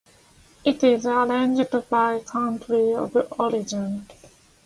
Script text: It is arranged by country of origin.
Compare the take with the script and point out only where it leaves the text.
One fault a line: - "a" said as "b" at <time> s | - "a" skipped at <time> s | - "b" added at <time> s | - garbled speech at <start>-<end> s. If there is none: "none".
none